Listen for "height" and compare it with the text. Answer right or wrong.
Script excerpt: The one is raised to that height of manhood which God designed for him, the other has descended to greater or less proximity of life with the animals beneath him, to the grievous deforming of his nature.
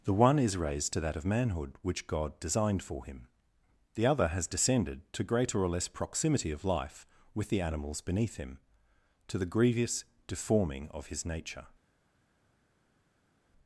wrong